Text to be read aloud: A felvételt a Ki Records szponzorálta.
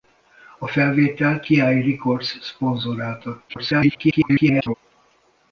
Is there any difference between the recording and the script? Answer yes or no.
yes